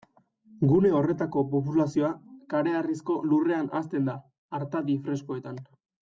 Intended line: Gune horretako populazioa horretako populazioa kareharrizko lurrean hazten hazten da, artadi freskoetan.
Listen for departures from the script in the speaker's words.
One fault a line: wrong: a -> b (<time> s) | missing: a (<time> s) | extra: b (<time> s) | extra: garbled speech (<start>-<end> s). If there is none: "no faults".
missing: horretako populazioa (2.1 s)
missing: hazten (4.1 s)